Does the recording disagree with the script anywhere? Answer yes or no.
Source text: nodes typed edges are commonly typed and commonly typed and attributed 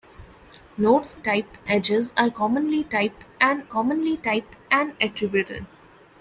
no